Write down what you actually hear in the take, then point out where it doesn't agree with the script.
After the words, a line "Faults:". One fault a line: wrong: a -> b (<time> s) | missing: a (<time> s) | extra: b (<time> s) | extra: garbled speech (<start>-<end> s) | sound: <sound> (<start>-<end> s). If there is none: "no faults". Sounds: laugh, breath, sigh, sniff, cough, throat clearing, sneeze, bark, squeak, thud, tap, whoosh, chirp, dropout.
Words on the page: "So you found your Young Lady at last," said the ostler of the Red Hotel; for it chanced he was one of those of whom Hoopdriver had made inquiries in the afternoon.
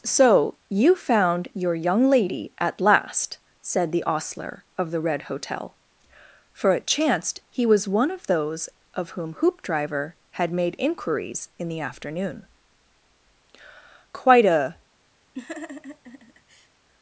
"So you found your Young Lady at last," said the ostler of the Red Hotel; for it chanced he was one of those of whom Hoopdriver had made inquiries in the afternoon. "Quite a
Faults:
extra: Quite a (14.1 s)
sound: laugh (15.3-16.7 s)